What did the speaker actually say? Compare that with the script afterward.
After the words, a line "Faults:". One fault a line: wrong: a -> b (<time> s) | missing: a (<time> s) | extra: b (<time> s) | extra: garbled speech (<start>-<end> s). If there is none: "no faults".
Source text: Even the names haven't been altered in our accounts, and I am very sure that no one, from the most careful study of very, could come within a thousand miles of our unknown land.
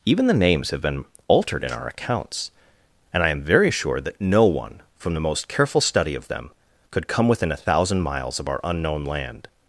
Even the names have been altered in our accounts, and I am very sure that no one, from the most careful study of them, could come within a thousand miles of our unknown land.
Faults:
wrong: haven't -> have (0.7 s)
wrong: very -> them (6.3 s)